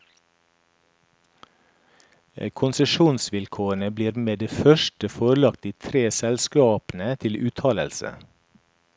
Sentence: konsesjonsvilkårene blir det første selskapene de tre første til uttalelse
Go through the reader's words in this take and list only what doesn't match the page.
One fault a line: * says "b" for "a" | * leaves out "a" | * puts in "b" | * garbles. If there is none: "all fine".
* puts in "med"
* says "forelagt" for "selskapene"
* says "selskapene" for "første"